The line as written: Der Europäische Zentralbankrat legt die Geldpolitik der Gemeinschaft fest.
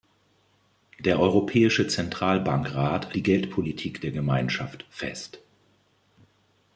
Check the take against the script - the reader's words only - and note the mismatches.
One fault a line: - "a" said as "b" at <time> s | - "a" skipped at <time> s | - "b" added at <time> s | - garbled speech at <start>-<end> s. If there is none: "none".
- "legt" skipped at 3.1 s